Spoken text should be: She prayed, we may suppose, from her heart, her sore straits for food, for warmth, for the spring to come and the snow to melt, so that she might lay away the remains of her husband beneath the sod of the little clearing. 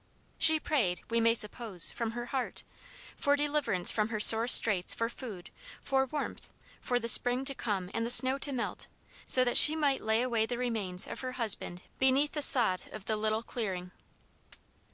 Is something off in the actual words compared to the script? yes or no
yes